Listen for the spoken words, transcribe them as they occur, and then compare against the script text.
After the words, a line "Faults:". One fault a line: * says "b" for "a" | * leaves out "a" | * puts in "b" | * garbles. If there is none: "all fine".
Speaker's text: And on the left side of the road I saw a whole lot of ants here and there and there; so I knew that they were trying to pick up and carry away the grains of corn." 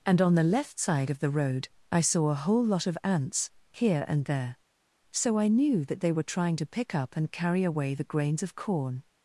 And on the left side of the road I saw a whole lot of ants here and there; so I knew that they were trying to pick up and carry away the grains of corn."
Faults:
* leaves out "and there"